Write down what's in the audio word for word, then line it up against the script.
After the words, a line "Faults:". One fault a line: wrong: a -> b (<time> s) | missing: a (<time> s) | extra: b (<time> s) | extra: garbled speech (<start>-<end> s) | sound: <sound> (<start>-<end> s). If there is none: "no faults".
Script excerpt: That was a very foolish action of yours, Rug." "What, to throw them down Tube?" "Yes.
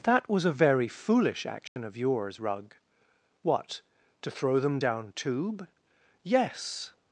That was a very foolish action of yours, Rug." "What, to throw them down Tube?" "Yes.
Faults:
sound: dropout (1.7-1.8 s)